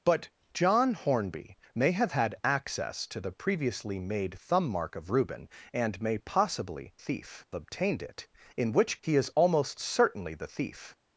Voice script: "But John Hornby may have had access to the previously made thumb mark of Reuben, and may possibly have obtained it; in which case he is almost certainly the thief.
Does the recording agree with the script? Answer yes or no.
no